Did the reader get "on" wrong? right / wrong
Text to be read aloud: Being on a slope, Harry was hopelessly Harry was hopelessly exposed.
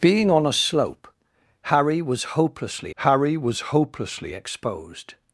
right